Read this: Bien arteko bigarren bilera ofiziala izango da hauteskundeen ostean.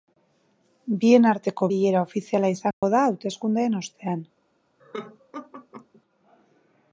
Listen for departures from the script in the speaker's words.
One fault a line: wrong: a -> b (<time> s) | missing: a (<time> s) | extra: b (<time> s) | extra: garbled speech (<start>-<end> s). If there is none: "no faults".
missing: bigarren (1.7 s)